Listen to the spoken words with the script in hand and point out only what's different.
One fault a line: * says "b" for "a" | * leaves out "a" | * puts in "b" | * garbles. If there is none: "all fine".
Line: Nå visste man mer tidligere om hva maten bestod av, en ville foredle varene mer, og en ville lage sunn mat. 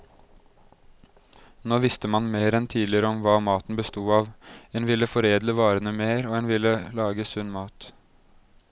* puts in "enn"